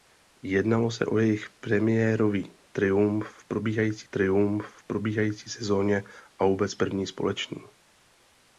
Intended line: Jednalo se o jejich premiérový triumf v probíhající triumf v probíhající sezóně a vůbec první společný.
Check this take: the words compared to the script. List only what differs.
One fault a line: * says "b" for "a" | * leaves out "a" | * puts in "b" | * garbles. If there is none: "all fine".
all fine